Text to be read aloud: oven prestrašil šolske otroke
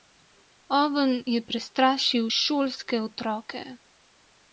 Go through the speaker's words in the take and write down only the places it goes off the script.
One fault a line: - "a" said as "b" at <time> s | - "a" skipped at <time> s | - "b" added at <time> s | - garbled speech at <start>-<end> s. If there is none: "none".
- "je" added at 1.2 s